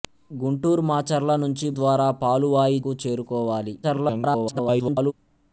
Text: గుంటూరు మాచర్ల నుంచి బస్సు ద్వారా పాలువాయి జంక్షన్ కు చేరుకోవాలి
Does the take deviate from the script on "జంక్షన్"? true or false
true